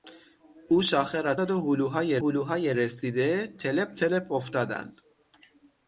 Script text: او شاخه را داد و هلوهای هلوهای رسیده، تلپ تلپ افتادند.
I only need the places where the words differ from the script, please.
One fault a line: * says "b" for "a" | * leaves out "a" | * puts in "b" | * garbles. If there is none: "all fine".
all fine